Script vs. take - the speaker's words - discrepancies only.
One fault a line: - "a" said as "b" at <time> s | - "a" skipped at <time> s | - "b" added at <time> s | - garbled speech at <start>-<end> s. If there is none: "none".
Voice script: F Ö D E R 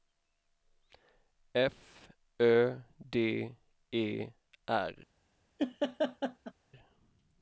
none